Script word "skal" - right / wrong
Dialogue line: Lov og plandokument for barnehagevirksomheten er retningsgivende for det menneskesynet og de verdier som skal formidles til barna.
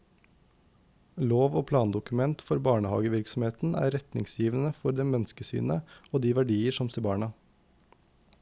wrong